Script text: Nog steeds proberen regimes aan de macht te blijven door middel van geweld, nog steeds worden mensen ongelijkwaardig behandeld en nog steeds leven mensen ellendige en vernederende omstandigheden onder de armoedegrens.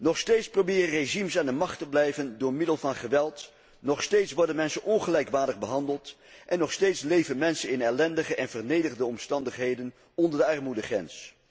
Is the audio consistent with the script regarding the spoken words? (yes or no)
no